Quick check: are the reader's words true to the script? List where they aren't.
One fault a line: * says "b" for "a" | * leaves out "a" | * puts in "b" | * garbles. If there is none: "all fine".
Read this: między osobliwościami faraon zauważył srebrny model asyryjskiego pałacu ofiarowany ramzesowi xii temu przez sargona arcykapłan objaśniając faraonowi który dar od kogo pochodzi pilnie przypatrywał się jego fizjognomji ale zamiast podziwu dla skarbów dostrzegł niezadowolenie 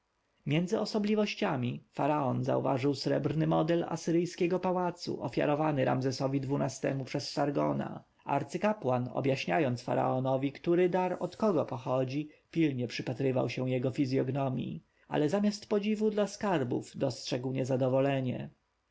all fine